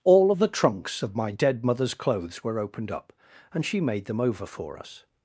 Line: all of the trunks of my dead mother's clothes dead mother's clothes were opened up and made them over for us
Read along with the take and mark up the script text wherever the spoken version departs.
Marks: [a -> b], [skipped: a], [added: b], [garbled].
all of the trunks of my dead mother's clothes [skipped: dead mother's clothes] were opened up and [added: she] made them over for us